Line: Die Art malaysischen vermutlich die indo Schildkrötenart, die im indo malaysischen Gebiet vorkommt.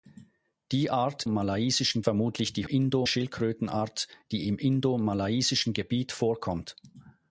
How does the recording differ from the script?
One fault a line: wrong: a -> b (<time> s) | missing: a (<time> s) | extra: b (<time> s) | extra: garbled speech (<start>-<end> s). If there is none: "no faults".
no faults